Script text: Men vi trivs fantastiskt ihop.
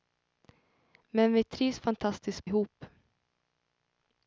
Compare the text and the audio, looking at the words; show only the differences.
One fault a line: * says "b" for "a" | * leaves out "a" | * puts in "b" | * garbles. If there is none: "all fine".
all fine